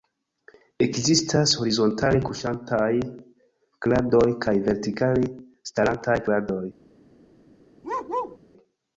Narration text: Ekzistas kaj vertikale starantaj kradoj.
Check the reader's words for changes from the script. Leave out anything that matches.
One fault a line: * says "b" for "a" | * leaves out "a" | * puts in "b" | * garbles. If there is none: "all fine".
* puts in "horizontale kuŝantaj kradoj"